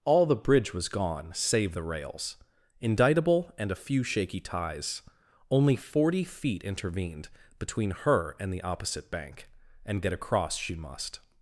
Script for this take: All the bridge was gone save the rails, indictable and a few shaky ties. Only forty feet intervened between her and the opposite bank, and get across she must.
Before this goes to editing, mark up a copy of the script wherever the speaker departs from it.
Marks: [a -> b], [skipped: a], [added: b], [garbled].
All the bridge was gone save the rails, indictable and a few shaky ties. Only forty feet intervened between her and the opposite bank, and get across she must.